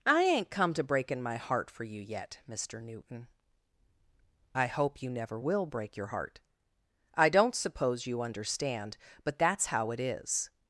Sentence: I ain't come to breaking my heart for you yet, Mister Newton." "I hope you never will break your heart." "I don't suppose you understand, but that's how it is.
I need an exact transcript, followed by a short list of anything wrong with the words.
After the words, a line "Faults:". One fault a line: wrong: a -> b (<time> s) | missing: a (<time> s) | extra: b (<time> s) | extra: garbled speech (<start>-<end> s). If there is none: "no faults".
I ain't come to breaking my heart for you yet, Mister Newton." "I hope you never will break your heart." "I don't suppose you understand, but that's how it is.
Faults:
no faults